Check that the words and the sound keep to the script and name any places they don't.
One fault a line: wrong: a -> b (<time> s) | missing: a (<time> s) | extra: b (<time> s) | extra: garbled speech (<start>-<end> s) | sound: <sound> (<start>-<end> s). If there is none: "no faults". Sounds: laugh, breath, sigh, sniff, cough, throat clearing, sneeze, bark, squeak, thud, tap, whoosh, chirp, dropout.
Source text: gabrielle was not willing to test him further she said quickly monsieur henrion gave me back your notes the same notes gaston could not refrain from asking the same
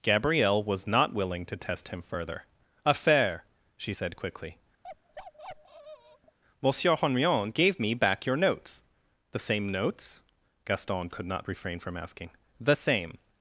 extra: affair (2.9 s)
sound: bark (4.8-6.4 s)